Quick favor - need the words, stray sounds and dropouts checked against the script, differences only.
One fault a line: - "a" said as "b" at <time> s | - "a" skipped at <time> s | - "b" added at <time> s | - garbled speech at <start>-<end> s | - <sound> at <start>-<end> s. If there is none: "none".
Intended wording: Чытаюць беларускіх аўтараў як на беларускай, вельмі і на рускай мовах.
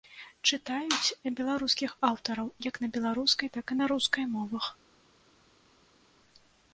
- "вельмі" said as "так" at 3.6 s